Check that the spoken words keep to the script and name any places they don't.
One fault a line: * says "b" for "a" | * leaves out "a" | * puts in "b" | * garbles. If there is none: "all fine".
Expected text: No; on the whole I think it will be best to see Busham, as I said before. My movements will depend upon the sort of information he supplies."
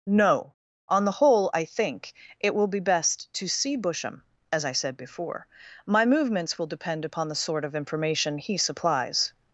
all fine